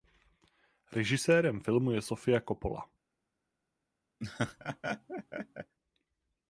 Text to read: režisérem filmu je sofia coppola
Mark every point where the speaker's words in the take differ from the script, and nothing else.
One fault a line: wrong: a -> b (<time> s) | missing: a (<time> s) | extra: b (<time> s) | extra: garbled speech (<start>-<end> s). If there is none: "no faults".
no faults